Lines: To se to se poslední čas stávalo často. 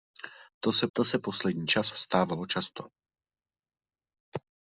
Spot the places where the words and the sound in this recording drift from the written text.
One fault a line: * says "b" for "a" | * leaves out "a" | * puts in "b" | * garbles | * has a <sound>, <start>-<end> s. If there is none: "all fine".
all fine